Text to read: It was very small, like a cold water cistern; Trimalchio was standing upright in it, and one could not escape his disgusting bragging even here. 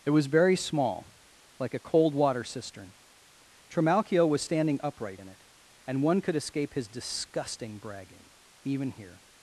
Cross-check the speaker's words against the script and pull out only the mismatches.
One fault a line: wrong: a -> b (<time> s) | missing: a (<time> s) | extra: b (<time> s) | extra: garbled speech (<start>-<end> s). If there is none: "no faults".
missing: not (6.4 s)